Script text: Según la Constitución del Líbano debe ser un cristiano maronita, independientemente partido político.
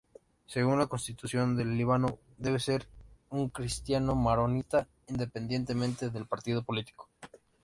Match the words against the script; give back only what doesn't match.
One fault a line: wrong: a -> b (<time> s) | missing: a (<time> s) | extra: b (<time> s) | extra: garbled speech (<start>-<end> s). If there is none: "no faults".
extra: del (6.1 s)